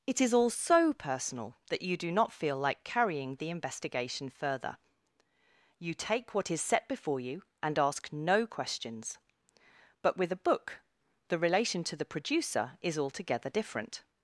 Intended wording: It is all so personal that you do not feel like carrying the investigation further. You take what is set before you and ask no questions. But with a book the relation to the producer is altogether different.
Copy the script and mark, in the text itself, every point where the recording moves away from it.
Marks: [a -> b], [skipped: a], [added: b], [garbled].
It is all so personal that you do not feel like carrying the investigation further. You take what is set before you and ask no questions. But with a book the relation to the producer is altogether different.